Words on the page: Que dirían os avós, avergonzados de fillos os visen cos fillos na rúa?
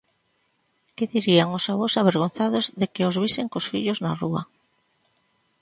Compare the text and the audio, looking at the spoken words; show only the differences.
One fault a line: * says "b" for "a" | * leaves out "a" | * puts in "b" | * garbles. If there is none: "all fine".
* says "que" for "fillos"